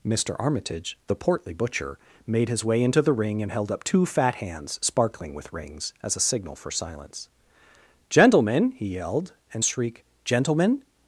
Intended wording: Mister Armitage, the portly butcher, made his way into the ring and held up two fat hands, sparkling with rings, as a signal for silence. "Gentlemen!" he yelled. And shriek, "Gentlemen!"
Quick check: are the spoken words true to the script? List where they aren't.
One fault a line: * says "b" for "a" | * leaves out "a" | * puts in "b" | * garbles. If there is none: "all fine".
all fine